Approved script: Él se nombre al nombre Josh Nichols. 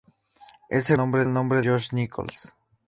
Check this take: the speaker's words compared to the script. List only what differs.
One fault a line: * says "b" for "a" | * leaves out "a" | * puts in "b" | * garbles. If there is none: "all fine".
all fine